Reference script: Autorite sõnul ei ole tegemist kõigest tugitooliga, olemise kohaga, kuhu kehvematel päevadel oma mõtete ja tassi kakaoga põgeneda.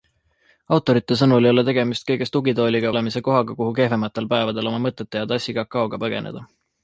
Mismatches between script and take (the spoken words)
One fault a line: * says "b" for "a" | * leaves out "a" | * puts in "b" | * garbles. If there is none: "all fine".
all fine